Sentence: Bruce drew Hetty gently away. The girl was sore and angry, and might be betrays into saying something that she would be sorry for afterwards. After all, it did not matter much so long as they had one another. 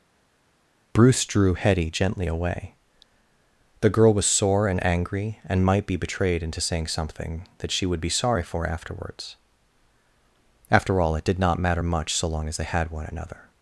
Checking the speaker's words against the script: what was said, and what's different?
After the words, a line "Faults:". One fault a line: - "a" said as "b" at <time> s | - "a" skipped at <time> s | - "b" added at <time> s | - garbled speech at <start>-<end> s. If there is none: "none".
Bruce drew Hetty gently away. The girl was sore and angry, and might be betrayed into saying something that she would be sorry for afterwards. After all, it did not matter much so long as they had one another.
Faults:
- "betrays" said as "betrayed" at 5.9 s